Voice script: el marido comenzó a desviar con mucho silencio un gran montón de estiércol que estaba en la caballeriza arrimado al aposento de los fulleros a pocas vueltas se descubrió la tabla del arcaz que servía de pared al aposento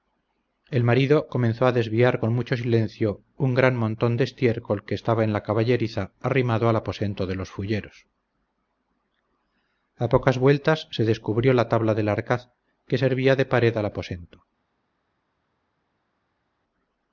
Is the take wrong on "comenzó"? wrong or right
right